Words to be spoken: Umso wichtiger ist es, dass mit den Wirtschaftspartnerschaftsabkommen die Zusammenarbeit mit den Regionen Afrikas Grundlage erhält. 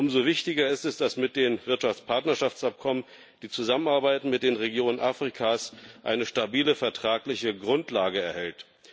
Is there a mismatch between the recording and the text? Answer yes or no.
yes